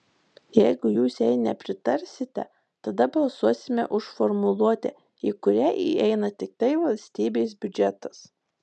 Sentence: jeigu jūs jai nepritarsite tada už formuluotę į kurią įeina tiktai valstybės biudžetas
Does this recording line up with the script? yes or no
no